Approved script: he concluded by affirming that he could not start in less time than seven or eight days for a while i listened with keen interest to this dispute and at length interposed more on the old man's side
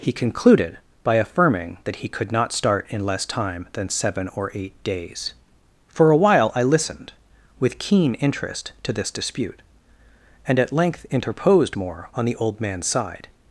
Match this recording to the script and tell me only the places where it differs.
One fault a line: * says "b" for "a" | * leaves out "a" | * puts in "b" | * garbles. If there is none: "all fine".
all fine